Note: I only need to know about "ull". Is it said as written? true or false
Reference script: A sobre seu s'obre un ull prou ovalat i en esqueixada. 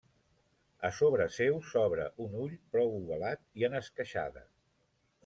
true